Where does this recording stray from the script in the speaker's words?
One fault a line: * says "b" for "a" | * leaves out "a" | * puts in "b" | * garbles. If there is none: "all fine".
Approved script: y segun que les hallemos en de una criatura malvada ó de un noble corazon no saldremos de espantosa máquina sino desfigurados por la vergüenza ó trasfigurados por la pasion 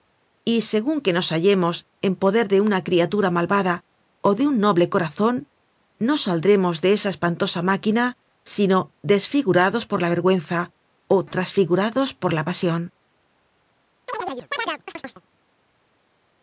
* says "nos" for "les"
* puts in "poder"
* puts in "esa"